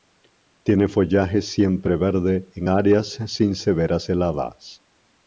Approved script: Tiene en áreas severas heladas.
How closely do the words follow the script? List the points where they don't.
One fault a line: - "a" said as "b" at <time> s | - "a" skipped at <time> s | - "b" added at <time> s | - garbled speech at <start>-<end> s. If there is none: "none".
- "follaje siempreverde" added at 0.9 s
- "sin" added at 3.3 s